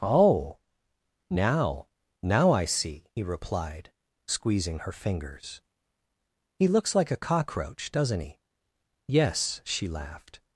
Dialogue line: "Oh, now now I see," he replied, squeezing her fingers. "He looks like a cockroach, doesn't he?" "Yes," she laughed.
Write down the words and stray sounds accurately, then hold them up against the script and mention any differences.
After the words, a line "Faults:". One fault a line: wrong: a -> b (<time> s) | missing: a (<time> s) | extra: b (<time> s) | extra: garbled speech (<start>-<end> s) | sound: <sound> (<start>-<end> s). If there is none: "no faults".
"Oh, now now I see," he replied, squeezing her fingers. "He looks like a cockroach, doesn't he?" "Yes," she laughed.
Faults:
no faults